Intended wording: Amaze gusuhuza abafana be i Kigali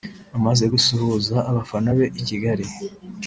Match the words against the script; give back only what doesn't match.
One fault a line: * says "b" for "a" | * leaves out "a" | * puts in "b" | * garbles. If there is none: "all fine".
all fine